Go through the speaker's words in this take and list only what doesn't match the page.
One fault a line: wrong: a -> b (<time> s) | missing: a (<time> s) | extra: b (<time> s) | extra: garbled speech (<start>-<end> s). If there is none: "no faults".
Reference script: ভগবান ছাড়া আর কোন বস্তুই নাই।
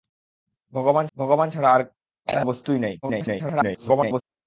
extra: ভগবান (1.2 s)
missing: কোন (1.8 s)
extra: garbled speech (3.0-4.2 s)